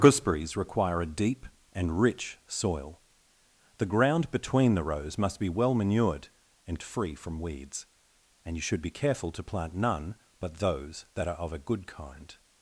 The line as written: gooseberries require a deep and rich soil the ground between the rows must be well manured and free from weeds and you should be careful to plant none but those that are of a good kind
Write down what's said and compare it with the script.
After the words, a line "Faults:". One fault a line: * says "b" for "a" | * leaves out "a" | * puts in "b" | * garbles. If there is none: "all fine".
gooseberries require a deep and rich soil the ground between the rows must be well manured and free from weeds and you should be careful to plant none but those that are of a good kind
Faults:
all fine